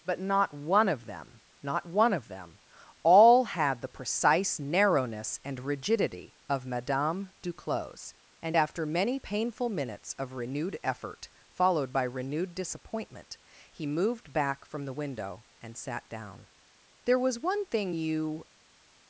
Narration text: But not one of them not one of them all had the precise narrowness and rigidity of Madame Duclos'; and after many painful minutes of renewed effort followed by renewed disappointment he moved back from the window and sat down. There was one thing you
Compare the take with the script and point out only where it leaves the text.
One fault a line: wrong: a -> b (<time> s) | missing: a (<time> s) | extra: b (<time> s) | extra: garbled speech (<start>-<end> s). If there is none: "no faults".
no faults